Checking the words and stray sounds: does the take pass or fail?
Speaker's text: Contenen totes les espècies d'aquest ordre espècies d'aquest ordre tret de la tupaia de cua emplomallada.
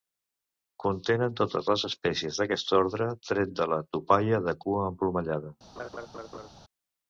fail